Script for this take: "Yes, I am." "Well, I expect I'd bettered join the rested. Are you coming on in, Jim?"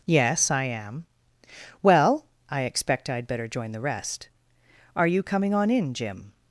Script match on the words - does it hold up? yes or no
no